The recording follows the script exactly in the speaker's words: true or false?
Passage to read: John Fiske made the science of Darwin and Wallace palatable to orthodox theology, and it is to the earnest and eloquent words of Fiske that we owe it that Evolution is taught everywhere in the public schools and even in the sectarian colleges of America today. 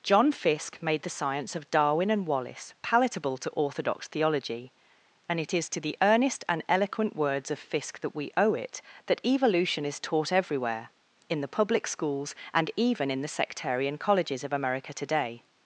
true